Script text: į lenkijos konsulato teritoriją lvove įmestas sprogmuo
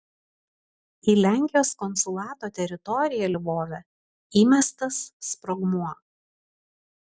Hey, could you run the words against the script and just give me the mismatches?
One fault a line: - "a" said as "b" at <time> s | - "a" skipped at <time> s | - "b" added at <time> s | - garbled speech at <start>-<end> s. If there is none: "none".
none